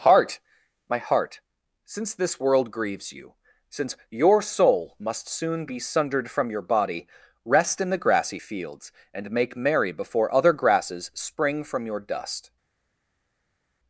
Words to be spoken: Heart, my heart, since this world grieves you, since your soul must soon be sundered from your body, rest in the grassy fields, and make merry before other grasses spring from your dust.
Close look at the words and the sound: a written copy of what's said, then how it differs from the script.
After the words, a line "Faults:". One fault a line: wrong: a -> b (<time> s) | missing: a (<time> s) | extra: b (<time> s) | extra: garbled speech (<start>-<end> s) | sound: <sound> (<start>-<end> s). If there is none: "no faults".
Heart, my heart, since this world grieves you, since your soul must soon be sundered from your body, rest in the grassy fields, and make merry before other grasses spring from your dust.
Faults:
no faults